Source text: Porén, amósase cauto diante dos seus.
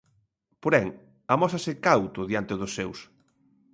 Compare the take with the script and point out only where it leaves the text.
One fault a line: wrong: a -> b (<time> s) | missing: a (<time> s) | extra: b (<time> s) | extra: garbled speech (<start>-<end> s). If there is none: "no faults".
no faults